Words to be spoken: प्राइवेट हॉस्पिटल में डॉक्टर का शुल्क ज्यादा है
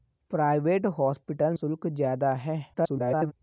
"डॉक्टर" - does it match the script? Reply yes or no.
no